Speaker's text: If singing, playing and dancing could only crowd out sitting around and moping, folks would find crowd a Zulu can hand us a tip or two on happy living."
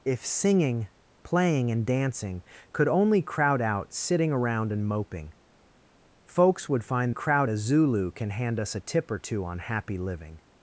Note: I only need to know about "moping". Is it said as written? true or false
true